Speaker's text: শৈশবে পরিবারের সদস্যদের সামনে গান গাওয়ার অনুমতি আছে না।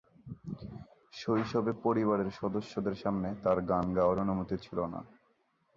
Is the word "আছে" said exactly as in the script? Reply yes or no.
no